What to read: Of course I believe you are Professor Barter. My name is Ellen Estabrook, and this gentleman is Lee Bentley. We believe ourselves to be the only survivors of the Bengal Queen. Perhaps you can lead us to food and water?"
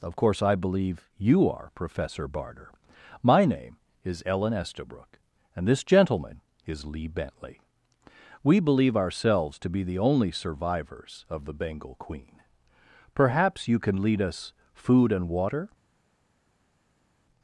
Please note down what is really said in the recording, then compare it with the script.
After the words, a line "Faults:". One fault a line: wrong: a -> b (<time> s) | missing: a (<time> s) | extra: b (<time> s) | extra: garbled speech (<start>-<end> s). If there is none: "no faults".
Of course I believe you are Professor Barter. My name is Ellen Estabrook, and this gentleman is Lee Bentley. We believe ourselves to be the only survivors of the Bengal Queen. Perhaps you can lead us food and water?"
Faults:
missing: to (14.5 s)